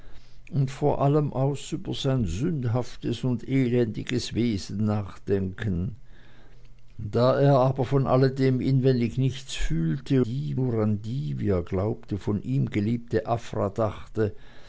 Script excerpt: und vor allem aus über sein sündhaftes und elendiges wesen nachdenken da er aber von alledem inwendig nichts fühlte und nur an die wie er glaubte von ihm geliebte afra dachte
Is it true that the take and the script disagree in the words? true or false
true